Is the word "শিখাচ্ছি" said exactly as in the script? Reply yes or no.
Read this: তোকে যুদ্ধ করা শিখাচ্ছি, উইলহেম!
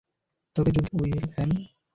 no